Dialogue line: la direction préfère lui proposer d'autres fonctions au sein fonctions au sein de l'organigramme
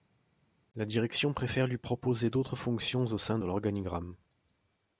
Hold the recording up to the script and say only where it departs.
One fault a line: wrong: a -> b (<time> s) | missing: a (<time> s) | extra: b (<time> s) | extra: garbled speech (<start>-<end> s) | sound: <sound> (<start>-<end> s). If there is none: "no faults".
missing: fonctions au sein (3.4 s)